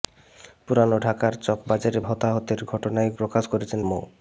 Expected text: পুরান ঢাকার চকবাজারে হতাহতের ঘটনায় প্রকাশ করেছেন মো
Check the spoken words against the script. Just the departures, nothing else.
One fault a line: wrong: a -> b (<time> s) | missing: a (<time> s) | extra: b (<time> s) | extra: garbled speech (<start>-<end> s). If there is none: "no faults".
no faults